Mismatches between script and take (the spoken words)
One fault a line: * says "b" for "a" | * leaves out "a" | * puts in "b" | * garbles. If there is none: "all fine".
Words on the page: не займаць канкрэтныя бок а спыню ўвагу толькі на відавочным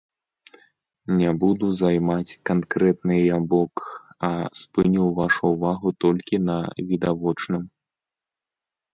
* puts in "буду"
* puts in "вашу"